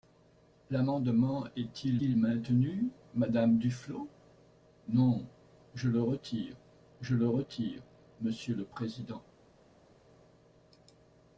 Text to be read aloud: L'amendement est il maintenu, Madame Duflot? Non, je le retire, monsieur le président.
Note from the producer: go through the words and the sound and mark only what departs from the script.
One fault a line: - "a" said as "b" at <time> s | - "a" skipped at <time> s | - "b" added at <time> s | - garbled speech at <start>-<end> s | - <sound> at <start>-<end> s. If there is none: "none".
- "il" added at 2.0 s
- "je le retire" added at 7.0 s